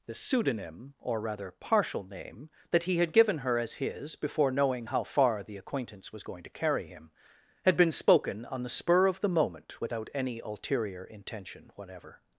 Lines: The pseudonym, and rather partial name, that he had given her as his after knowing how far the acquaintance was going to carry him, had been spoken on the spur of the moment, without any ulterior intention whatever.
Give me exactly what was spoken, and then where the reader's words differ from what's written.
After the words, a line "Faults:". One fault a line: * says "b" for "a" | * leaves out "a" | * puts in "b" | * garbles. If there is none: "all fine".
The pseudonym, or rather partial name, that he had given her as his before knowing how far the acquaintance was going to carry him, had been spoken on the spur of the moment, without any ulterior intention whatever.
Faults:
* says "or" for "and"
* says "before" for "after"